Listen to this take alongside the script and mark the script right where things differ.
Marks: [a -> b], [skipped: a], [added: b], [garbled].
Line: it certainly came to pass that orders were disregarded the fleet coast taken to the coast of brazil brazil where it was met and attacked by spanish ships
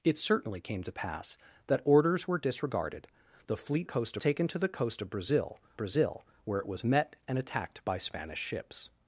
it certainly came to pass that orders were disregarded the fleet coast taken to the coast of brazil brazil where it was met and attacked by spanish ships